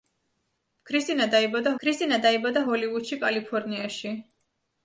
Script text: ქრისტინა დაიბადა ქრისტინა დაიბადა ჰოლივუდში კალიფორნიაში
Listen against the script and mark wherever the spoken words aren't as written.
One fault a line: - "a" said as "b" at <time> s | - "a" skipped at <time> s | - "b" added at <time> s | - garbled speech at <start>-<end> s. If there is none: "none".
none